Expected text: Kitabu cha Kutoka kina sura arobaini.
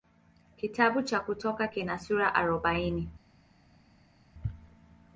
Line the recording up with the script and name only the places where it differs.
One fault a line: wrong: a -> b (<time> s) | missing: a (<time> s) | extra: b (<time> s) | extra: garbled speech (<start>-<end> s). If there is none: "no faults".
no faults